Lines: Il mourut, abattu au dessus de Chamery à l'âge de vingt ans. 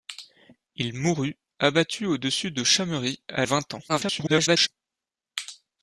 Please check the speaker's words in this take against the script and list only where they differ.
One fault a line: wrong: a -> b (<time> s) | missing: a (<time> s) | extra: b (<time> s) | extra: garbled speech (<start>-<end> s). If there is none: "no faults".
missing: l'âge de (3.5 s)
extra: garbled speech (3.9-4.7 s)